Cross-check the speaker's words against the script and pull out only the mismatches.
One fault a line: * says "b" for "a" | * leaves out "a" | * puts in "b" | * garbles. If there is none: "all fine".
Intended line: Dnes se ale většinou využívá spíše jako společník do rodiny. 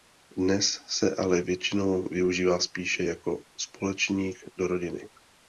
all fine